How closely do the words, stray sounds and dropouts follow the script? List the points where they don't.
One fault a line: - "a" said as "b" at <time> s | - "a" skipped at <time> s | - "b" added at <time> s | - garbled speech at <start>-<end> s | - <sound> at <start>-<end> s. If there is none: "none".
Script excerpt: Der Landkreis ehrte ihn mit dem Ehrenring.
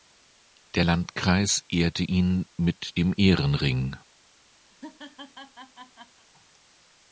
- laugh at 4.7-6.3 s